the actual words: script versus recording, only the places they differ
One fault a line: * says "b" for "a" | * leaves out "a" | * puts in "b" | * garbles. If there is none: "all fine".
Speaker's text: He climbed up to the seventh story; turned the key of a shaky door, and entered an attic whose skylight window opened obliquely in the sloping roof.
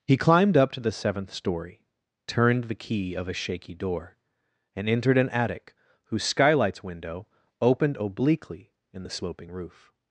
* says "skylights" for "skylight"